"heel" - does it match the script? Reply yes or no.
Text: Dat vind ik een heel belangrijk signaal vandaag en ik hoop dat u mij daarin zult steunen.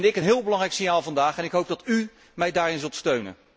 yes